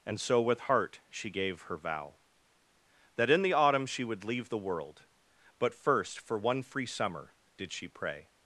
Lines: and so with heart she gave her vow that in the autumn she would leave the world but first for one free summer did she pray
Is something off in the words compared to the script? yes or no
no